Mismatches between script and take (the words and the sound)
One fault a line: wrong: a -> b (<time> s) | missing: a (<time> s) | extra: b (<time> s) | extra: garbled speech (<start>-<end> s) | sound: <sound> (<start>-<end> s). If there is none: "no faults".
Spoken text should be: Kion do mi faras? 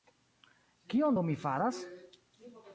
no faults